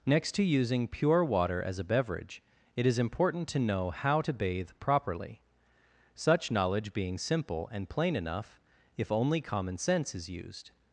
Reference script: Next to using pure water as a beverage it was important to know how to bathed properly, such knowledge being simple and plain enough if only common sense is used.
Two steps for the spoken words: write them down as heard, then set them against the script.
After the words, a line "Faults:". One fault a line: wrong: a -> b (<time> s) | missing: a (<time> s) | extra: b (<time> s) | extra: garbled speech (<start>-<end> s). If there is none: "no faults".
Next to using pure water as a beverage it is important to know how to bathe properly, such knowledge being simple and plain enough if only common sense is used.
Faults:
wrong: was -> is (2.9 s)
wrong: bathed -> bathe (4.3 s)